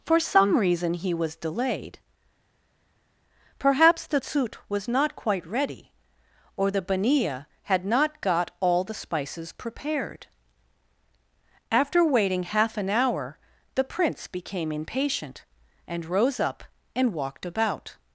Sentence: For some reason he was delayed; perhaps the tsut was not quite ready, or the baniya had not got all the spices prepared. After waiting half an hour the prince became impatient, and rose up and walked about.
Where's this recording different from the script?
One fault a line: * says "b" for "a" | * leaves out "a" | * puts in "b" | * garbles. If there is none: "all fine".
all fine